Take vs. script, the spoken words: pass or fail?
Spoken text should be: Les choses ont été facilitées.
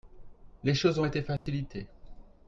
pass